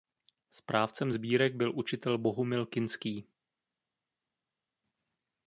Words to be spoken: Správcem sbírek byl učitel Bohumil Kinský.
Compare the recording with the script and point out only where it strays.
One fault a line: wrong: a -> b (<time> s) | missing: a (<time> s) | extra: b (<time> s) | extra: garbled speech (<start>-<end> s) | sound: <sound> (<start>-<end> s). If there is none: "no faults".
no faults